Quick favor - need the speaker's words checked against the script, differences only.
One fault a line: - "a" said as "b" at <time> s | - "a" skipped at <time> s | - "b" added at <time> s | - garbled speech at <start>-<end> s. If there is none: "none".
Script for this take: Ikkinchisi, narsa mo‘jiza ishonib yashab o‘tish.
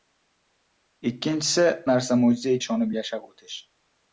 none